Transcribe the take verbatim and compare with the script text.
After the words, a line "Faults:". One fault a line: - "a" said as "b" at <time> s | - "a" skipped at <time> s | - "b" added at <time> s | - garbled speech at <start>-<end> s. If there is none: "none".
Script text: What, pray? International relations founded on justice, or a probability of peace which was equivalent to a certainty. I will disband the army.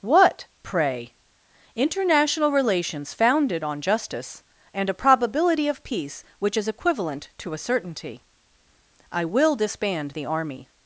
What, pray? International relations founded on justice, and a probability of peace which is equivalent to a certainty. I will disband the army.
Faults:
- "or" said as "and" at 4.7 s
- "was" said as "is" at 6.6 s